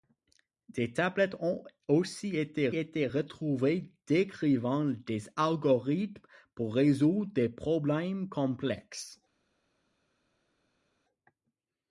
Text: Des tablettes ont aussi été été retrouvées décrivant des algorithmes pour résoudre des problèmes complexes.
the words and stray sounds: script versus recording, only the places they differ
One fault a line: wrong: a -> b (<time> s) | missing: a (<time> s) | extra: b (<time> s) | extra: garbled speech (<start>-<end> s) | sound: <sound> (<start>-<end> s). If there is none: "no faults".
no faults